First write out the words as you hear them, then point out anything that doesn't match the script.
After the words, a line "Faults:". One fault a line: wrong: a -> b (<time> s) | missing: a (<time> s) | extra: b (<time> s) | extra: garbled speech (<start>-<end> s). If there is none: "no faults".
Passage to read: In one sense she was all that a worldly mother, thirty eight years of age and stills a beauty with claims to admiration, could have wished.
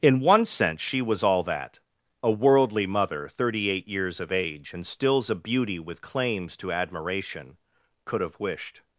In one sense she was all that a worldly mother, thirty eight years of age and stills a beauty with claims to admiration, could have wished.
Faults:
no faults